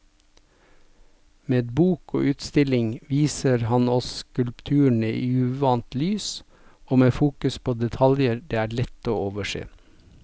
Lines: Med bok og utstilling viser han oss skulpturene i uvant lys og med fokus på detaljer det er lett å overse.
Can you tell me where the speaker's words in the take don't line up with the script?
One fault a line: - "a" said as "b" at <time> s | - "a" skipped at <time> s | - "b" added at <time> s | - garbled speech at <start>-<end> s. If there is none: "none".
none